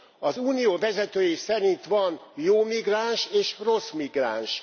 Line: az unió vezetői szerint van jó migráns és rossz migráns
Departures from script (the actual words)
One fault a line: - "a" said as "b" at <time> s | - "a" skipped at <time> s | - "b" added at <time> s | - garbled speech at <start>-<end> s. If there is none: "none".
none